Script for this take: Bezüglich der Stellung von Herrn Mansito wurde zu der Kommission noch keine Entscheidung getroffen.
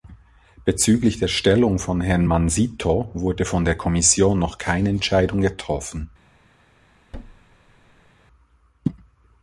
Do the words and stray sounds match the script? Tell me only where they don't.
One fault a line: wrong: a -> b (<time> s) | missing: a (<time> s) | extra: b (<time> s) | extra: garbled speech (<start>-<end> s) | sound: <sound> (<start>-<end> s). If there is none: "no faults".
wrong: zu -> von (3.4 s)
sound: thud (7.1-8.1 s)